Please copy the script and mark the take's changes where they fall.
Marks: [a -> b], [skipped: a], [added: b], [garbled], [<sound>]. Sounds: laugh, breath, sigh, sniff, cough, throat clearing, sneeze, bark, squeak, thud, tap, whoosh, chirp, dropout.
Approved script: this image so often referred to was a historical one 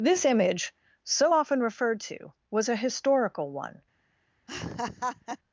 this image so often referred to was a historical one [laugh]